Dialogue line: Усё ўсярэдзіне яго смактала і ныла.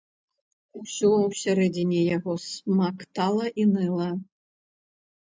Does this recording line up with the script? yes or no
yes